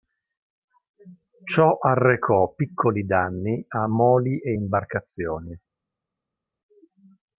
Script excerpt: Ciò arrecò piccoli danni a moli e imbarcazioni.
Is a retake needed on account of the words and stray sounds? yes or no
no